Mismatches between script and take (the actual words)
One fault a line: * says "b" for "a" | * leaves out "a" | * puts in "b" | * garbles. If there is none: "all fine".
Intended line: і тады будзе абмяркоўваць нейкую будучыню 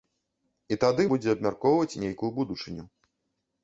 all fine